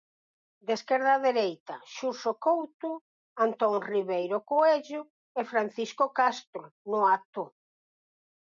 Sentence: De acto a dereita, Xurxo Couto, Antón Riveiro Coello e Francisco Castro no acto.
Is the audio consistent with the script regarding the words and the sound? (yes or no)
no